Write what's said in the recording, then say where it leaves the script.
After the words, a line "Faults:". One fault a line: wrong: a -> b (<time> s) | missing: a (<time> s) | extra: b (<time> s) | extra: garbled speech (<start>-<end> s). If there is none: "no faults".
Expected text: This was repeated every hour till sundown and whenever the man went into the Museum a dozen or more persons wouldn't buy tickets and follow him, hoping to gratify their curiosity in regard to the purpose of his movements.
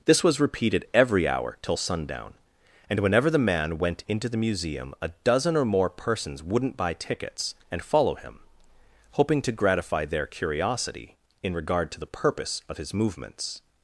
This was repeated every hour till sundown and whenever the man went into the Museum a dozen or more persons wouldn't buy tickets and follow him, hoping to gratify their curiosity in regard to the purpose of his movements.
Faults:
no faults